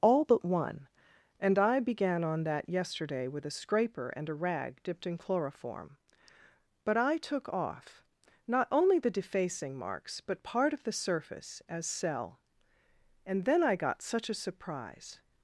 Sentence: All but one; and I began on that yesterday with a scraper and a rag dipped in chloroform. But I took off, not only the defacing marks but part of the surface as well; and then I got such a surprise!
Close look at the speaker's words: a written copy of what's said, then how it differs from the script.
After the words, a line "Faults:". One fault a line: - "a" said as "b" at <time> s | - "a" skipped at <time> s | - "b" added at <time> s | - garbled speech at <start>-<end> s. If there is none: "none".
All but one; and I began on that yesterday with a scraper and a rag dipped in chloroform. But I took off, not only the defacing marks but part of the surface as cell; and then I got such a surprise!
Faults:
- "well" said as "cell" at 11.9 s